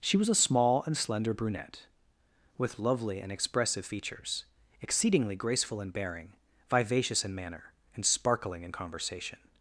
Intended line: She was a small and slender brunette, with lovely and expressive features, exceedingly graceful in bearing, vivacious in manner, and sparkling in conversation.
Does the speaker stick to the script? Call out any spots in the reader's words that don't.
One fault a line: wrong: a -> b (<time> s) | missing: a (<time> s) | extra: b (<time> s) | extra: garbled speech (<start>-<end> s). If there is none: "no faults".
no faults